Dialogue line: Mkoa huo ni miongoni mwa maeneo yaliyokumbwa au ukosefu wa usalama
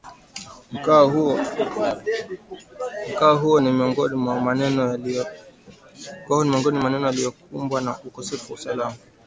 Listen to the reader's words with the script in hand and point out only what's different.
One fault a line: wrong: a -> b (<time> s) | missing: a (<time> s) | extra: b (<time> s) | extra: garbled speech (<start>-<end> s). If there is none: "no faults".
wrong: au -> na (7.8 s)